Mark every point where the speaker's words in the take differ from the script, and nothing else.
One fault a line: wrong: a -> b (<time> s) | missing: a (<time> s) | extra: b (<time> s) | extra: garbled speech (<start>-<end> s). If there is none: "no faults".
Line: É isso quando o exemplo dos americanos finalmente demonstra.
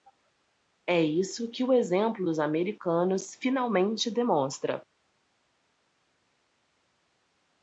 wrong: quando -> que (1.5 s)